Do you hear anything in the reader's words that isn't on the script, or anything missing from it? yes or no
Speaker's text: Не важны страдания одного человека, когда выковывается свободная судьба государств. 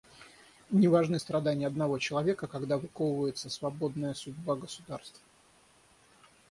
no